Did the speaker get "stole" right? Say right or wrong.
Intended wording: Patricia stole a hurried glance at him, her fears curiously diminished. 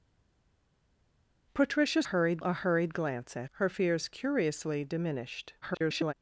wrong